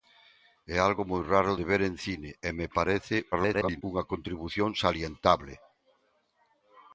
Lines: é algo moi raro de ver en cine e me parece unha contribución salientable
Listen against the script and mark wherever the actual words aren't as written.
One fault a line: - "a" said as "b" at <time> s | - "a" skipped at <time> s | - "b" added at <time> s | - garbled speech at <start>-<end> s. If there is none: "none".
- garbled speech at 3.3-3.8 s